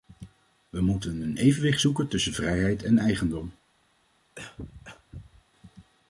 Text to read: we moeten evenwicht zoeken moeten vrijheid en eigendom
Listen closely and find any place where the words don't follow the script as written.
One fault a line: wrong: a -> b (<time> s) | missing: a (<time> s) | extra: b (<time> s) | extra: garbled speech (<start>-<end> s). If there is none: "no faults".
extra: een (1.2 s)
wrong: moeten -> tussen (2.1 s)